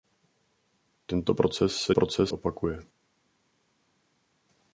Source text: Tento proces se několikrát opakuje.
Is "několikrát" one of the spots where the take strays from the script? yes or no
yes